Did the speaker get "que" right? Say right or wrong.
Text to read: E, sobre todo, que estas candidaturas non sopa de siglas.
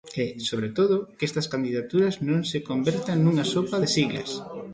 right